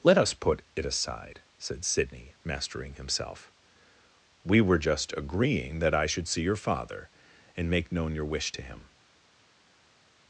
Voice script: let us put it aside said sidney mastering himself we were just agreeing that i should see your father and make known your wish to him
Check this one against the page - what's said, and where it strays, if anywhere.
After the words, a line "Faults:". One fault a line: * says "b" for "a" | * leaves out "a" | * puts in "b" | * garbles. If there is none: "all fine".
let us put it aside said sidney mastering himself we were just agreeing that i should see your father and make known your wish to him
Faults:
all fine